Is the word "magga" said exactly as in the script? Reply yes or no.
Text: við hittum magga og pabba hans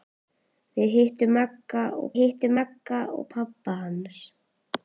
yes